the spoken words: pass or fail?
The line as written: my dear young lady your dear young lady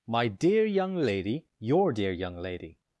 pass